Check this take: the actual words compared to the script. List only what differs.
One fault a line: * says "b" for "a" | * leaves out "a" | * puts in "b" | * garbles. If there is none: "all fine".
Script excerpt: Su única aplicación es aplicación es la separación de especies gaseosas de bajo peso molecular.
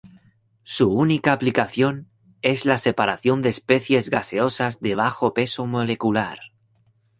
* leaves out "aplicación es"